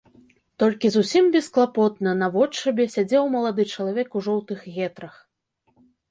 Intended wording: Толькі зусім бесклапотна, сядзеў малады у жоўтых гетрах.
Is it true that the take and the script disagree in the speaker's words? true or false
true